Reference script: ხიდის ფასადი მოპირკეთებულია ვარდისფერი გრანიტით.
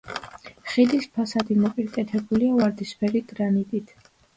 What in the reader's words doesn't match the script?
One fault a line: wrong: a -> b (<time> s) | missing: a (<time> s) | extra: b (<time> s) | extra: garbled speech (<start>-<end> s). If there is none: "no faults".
no faults